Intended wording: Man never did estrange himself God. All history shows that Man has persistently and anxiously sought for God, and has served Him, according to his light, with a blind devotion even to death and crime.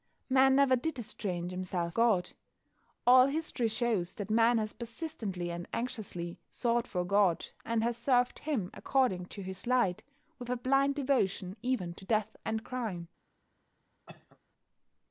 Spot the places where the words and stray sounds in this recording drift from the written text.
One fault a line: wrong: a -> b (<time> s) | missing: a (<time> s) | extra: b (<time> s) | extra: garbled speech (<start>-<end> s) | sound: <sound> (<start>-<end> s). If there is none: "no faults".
sound: cough (14.1-14.4 s)